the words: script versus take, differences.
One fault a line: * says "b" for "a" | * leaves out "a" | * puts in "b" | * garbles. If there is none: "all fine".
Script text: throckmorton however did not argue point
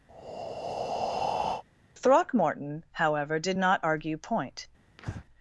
all fine